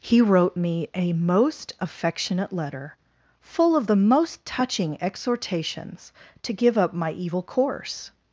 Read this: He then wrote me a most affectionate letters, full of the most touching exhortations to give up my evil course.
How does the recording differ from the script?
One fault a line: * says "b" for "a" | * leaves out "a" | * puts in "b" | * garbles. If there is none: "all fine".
* leaves out "then"
* says "letter" for "letters"